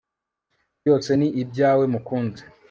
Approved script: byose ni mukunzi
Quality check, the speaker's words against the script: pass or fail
fail